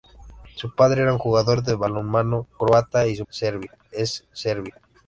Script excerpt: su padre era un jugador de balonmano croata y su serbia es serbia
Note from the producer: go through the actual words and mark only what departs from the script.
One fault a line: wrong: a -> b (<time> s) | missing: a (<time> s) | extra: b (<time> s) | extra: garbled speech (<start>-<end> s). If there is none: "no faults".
no faults